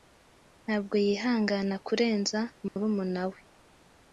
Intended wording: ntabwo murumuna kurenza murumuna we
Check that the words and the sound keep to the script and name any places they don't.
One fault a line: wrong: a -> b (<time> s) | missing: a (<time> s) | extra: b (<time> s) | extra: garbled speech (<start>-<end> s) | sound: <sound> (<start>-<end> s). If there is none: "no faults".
wrong: murumuna -> yihangana (1.1 s)
sound: dropout (2.7-2.8 s)